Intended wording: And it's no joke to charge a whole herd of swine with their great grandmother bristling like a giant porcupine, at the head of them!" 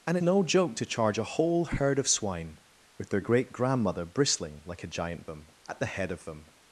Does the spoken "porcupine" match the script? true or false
false